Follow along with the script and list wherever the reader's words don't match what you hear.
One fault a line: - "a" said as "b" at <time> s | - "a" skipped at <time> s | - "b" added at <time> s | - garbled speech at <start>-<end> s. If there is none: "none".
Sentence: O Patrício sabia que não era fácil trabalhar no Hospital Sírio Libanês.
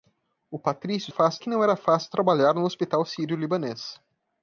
- "sabia" said as "fácil" at 1.1 s